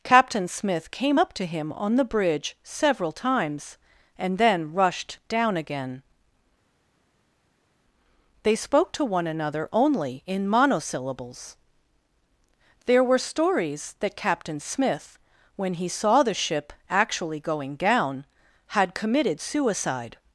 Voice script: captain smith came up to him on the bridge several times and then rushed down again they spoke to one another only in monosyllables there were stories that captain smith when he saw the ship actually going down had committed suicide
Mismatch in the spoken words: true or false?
false